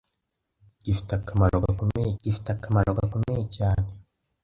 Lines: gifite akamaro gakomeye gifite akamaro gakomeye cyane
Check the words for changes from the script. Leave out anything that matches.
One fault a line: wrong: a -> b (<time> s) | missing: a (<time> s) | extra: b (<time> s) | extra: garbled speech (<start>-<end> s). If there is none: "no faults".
no faults